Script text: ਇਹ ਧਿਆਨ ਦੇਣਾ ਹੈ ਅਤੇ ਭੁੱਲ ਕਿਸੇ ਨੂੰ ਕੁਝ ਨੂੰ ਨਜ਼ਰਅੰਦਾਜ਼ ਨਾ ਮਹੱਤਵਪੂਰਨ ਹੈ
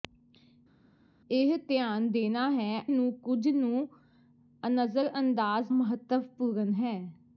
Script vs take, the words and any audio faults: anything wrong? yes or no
yes